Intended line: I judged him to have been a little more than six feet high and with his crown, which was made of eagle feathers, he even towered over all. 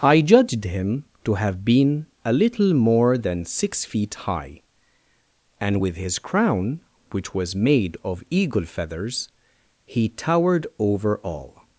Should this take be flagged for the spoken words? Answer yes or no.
yes